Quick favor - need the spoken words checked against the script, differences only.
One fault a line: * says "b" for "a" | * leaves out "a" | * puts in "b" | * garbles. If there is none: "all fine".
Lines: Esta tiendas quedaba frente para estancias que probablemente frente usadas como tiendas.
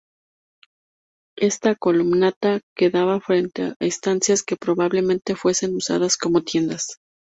* says "columnata" for "tiendas"
* says "a" for "para"
* says "fuesen" for "frente"